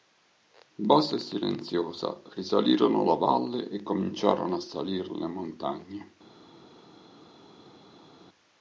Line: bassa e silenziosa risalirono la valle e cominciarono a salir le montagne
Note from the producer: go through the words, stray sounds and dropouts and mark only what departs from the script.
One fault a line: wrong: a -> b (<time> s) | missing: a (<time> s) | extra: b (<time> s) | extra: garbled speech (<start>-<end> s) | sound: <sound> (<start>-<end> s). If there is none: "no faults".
no faults